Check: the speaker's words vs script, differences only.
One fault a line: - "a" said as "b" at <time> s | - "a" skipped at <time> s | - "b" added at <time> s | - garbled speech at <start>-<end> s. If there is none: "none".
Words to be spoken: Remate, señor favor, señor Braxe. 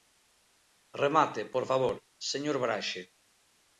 - "señor" said as "por" at 1.5 s